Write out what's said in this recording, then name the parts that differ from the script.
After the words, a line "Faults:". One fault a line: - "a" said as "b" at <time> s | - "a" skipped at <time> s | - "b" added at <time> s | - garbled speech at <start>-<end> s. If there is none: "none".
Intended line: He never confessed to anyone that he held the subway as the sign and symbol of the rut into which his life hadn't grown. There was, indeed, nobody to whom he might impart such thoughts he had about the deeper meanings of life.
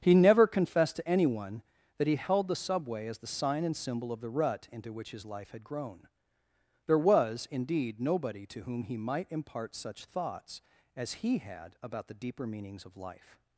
He never confessed to anyone that he held the subway as the sign and symbol of the rut into which his life had grown. There was, indeed, nobody to whom he might impart such thoughts as he had about the deeper meanings of life.
Faults:
- "hadn't" said as "had" at 5.5 s
- "as" added at 10.9 s